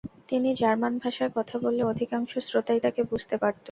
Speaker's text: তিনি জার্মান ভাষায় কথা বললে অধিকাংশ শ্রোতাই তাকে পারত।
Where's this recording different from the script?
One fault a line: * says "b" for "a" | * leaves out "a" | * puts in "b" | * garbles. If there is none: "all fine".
* puts in "বুঝতে"